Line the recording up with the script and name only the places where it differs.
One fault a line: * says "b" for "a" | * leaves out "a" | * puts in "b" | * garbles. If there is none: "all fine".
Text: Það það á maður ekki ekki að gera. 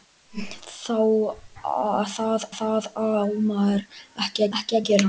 all fine